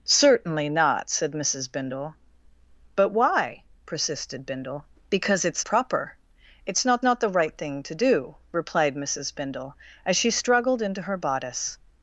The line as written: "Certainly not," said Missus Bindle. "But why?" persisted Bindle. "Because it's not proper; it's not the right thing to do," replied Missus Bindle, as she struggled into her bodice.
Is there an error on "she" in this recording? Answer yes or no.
no